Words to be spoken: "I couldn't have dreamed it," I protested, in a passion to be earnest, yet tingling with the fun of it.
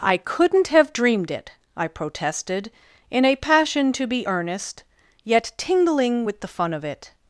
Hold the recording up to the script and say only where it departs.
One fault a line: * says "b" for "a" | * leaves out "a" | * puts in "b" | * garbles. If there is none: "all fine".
all fine